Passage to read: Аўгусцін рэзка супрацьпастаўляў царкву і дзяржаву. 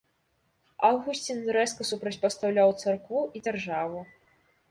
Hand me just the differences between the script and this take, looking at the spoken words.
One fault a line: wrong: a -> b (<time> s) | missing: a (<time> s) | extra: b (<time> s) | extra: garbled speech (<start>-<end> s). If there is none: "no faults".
no faults